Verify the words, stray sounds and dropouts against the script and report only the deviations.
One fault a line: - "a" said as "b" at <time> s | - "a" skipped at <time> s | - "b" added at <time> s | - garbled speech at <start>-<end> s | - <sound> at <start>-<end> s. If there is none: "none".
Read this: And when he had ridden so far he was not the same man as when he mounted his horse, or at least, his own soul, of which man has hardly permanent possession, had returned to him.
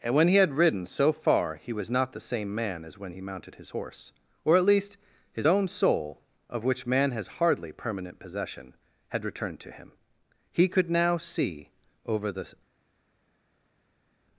- "He could now see over the" added at 10.5 s